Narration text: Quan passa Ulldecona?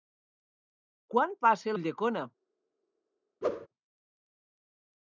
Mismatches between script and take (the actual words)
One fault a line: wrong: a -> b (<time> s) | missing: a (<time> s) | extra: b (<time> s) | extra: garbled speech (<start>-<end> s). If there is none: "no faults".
no faults